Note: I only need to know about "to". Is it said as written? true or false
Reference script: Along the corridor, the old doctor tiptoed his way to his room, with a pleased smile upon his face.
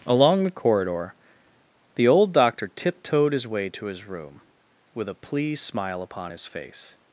true